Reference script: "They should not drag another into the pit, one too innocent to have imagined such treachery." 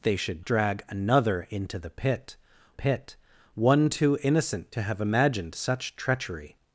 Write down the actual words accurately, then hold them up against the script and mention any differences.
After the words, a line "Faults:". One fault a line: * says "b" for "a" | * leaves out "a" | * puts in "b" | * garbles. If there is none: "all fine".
"They should drag another into the pit pit, one too innocent to have imagined such treachery."
Faults:
* leaves out "not"
* puts in "pit"